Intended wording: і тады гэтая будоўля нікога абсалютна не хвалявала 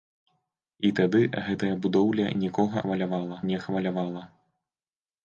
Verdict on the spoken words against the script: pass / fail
fail